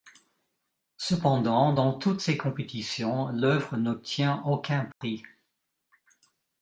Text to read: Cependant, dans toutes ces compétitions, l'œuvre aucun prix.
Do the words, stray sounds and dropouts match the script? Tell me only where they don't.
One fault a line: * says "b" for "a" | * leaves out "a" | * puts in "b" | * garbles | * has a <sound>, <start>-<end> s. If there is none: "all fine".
* puts in "n'obtient"
* has a dropout, 4.9-5.0 s